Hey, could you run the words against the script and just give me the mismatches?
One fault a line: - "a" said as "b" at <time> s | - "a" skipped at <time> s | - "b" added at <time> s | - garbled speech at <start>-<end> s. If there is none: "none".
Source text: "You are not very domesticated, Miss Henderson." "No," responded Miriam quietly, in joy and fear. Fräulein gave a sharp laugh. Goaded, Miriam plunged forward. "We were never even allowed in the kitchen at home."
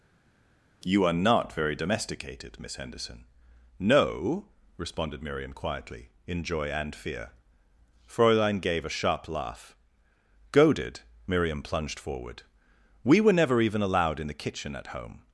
none